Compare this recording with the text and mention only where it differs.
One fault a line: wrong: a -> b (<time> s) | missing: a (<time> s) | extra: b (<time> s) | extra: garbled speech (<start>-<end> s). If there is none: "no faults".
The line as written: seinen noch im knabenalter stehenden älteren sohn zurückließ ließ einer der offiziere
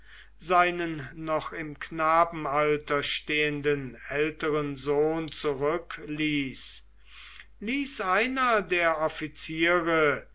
no faults